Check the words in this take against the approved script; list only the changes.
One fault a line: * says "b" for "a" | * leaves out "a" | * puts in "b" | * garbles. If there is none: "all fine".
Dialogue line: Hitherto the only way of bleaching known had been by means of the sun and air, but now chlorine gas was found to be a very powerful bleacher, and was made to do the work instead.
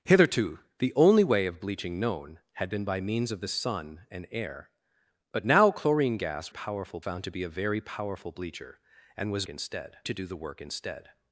* says "powerful" for "was"
* says "instead" for "made"